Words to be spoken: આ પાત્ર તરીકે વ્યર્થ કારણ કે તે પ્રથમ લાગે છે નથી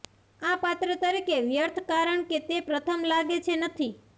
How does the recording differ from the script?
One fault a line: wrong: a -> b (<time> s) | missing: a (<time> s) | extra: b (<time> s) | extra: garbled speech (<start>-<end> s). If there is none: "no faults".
no faults